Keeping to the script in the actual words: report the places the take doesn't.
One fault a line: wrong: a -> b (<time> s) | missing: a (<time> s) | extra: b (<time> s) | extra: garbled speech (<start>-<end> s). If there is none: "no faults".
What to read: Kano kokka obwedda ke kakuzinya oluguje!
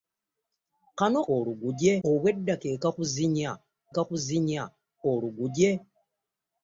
wrong: kokka -> oluguje (1.3 s)
extra: kakuzinya (3.9 s)